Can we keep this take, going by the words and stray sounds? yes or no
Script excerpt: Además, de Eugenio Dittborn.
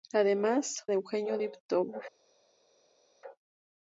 yes